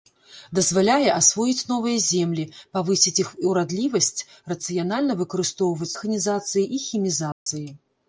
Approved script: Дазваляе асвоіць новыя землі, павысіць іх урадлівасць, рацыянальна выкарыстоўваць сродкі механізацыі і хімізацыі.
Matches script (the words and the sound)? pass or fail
fail